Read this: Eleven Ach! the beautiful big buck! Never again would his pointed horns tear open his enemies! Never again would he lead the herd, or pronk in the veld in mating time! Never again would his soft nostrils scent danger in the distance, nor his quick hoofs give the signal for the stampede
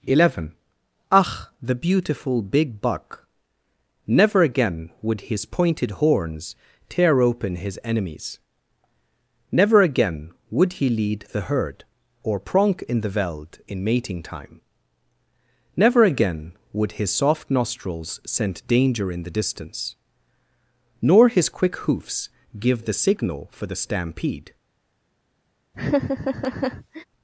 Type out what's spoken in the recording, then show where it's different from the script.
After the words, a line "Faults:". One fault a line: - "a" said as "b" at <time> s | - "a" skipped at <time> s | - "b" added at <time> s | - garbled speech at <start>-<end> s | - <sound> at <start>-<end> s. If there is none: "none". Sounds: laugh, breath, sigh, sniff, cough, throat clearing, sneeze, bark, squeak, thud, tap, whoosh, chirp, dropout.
Eleven Ach! the beautiful big buck! Never again would his pointed horns tear open his enemies! Never again would he lead the herd, or pronk in the veld in mating time! Never again would his soft nostrils scent danger in the distance, nor his quick hoofs give the signal for the stampede
Faults:
- laugh at 25.7-27.0 s